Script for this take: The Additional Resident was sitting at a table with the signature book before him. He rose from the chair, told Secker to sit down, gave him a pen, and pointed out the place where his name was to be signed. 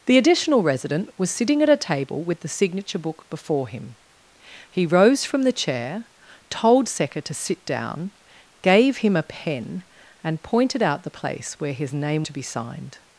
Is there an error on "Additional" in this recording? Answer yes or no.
no